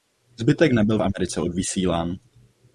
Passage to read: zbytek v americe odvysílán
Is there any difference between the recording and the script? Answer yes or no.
yes